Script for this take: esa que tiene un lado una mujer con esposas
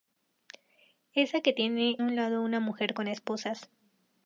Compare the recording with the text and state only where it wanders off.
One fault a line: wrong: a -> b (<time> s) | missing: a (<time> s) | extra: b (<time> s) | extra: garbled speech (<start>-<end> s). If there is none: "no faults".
no faults